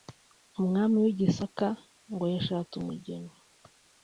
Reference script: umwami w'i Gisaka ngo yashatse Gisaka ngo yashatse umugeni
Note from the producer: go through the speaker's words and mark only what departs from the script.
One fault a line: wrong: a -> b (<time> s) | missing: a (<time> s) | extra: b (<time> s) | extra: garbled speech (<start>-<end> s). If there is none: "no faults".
missing: Gisaka ngo yashatse (2.7 s)